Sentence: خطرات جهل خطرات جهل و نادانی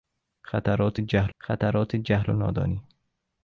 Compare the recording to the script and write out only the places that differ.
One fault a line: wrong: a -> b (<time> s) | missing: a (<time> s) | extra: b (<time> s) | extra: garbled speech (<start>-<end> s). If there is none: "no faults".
no faults